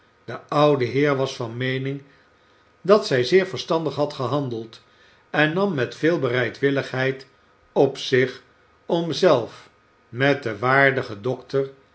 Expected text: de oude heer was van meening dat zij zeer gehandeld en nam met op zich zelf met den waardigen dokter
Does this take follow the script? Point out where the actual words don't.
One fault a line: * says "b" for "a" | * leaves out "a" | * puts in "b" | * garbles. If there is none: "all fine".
* puts in "verstandig had"
* puts in "veel bereidwilligheid"
* puts in "om"